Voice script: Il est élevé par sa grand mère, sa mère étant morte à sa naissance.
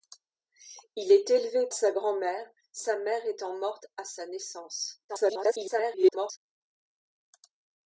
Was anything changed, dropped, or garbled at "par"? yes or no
yes